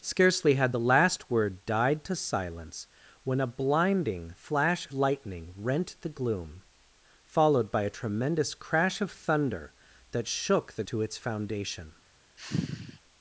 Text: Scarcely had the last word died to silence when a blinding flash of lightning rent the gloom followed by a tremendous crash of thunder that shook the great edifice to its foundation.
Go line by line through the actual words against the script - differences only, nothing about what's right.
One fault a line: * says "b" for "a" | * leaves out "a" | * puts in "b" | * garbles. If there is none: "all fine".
* leaves out "of"
* leaves out "great edifice"